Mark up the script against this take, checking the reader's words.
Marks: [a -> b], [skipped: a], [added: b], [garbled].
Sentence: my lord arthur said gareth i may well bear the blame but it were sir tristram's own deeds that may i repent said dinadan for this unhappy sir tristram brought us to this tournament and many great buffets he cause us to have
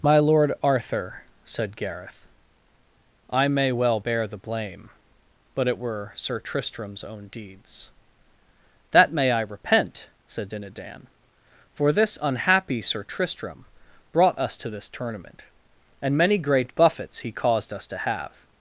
my lord arthur said gareth i may well bear the blame but it were sir tristram's own deeds that may i repent said dinadan for this unhappy sir tristram brought us to this tournament and many great buffets he [cause -> caused] us to have